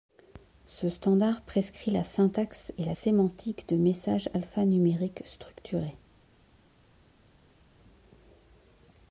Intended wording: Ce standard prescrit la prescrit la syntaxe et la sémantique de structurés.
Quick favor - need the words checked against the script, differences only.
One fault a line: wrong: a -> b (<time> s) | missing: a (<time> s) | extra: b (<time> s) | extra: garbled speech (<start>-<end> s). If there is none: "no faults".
missing: prescrit la (2.0 s)
extra: messages alphanumériques (3.8 s)